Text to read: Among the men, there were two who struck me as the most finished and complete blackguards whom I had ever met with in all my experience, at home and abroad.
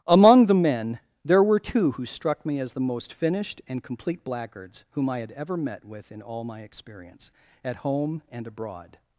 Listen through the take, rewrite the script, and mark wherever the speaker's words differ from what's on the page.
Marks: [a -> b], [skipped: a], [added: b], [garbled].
Among the men, there were two who struck me as the most finished and complete blackguards whom I had ever met with in all my experience, at home and abroad.